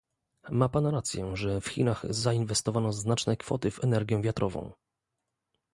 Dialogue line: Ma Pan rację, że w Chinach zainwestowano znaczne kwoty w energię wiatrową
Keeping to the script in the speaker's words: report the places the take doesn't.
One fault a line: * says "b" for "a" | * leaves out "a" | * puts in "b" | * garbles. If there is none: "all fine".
all fine